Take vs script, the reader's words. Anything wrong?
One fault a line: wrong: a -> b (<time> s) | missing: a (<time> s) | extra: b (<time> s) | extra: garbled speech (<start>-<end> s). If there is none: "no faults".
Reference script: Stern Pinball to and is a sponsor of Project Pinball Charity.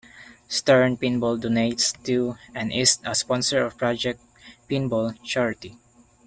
extra: donates (1.4 s)